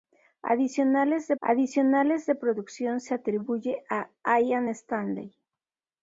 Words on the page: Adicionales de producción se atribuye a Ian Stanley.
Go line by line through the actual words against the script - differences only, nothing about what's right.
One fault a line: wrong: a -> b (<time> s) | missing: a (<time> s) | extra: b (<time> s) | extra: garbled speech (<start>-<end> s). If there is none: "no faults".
extra: adicionales de (1.4 s)